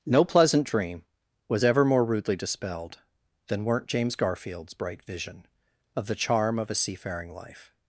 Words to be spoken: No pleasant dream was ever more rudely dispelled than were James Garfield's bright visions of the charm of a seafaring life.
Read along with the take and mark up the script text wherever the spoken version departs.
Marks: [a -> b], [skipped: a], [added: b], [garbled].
No pleasant dream was ever more rudely dispelled than [were -> weren't] James Garfield's bright [visions -> vision] of the charm of a seafaring life.